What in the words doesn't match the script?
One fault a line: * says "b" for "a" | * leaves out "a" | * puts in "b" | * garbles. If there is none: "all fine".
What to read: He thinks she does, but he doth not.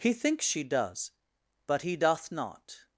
all fine